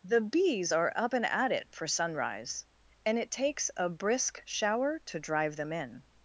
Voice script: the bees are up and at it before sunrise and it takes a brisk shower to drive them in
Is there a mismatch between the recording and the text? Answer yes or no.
yes